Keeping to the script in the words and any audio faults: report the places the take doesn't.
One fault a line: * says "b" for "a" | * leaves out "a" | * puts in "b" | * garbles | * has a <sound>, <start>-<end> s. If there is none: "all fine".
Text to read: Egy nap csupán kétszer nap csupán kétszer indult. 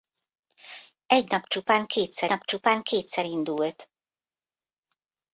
all fine